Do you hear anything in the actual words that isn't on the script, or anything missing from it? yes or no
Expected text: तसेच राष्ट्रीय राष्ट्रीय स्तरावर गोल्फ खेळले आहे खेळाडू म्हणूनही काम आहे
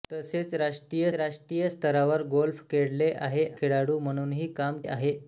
no